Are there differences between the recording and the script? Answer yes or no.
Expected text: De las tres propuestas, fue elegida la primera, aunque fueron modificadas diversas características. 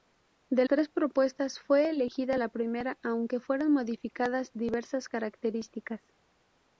yes